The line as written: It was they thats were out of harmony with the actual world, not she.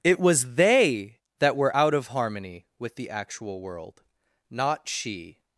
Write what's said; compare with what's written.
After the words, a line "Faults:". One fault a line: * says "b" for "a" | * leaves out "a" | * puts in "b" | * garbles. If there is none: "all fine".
It was they that were out of harmony with the actual world, not she.
Faults:
* says "that" for "thats"